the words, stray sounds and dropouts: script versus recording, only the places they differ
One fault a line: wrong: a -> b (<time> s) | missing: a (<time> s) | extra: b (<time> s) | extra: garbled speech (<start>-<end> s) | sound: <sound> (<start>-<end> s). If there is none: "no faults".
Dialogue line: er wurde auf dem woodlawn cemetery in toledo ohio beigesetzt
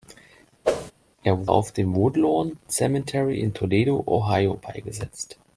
sound: whoosh (0.6-0.9 s)
missing: wurde (1.5 s)